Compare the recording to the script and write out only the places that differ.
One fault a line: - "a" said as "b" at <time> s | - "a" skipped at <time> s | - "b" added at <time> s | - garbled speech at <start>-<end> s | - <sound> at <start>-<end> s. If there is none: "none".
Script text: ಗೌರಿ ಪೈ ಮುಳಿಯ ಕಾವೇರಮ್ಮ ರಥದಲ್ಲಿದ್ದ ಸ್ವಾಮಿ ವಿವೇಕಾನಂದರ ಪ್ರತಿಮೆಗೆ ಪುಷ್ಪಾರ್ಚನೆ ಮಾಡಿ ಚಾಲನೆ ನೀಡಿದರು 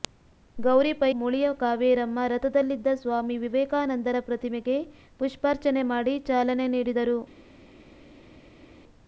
none